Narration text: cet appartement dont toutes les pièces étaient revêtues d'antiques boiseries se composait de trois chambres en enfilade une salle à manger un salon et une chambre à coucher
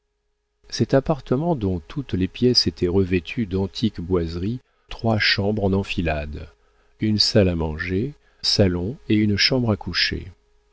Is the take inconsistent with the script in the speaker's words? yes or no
yes